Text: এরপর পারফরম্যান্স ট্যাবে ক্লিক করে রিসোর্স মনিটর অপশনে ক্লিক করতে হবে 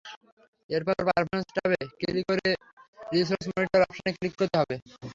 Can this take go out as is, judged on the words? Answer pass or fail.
pass